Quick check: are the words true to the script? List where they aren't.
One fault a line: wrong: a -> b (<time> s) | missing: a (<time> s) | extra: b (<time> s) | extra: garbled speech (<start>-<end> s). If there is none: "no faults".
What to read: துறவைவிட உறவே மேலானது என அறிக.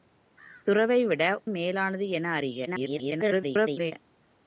missing: உறவே (1.2 s)
extra: garbled speech (2.7-3.9 s)